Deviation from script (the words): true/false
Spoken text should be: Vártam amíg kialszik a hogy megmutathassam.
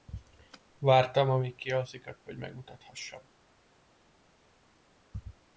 false